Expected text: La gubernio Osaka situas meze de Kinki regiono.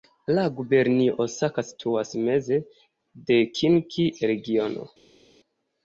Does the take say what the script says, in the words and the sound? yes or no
yes